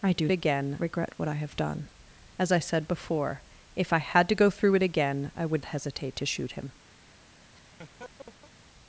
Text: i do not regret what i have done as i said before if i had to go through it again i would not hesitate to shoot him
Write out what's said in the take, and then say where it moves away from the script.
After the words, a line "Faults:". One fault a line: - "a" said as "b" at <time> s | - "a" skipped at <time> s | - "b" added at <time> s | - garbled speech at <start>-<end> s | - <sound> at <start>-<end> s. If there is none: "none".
i do again regret what i have done as i said before if i had to go through it again i would hesitate to shoot him
Faults:
- "not" said as "again" at 0.3 s
- "not" skipped at 5.7 s
- laugh at 7.5-8.5 s